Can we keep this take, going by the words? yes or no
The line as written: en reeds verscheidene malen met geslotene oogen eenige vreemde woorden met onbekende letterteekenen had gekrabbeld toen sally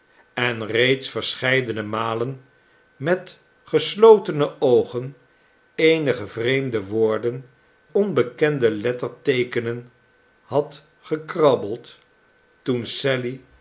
no